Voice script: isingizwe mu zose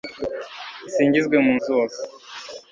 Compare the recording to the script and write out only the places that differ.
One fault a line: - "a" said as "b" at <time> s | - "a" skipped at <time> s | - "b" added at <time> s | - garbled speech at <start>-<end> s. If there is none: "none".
none